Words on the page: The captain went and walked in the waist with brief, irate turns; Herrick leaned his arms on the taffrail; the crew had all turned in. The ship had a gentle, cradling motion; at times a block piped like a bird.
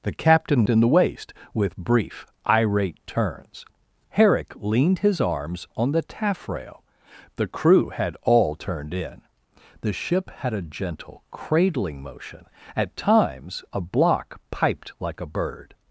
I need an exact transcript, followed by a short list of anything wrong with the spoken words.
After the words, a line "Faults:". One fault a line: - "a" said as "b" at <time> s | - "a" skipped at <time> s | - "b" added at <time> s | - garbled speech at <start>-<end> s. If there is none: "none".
The captain in the waist with brief, irate turns; Herrick leaned his arms on the taffrail; the crew had all turned in. The ship had a gentle, cradling motion; at times a block piped like a bird.
Faults:
- "went and walked" skipped at 0.7 s